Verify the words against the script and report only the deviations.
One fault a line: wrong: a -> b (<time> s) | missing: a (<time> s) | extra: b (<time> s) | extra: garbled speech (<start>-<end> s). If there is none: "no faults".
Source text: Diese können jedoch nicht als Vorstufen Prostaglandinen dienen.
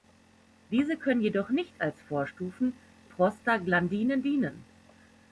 no faults